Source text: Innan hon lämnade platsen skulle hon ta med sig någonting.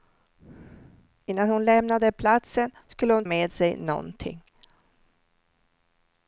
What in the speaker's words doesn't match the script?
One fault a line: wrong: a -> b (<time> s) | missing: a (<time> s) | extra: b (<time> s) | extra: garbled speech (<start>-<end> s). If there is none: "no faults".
missing: ta (3.2 s)